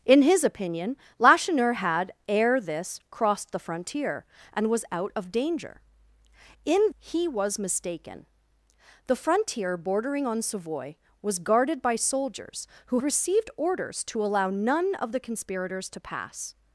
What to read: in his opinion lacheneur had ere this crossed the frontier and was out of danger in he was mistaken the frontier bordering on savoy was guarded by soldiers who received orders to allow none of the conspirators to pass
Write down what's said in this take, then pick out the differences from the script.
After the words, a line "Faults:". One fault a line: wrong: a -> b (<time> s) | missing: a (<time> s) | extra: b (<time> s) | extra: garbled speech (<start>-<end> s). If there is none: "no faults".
in his opinion lacheneur had ere this crossed the frontier and was out of danger in he was mistaken the frontier bordering on savoy was guarded by soldiers who received orders to allow none of the conspirators to pass
Faults:
no faults